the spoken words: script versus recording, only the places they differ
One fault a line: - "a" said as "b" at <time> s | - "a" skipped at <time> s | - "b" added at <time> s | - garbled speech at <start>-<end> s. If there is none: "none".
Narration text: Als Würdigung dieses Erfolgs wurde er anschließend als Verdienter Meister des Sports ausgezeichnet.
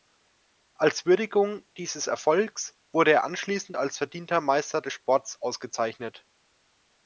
none